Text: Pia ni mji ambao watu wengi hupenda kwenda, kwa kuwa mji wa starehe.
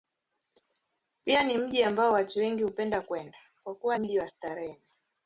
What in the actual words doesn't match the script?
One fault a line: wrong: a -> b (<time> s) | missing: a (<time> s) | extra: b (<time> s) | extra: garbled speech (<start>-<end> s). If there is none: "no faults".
no faults